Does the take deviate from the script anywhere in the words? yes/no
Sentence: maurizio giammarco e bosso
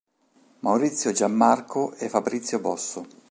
yes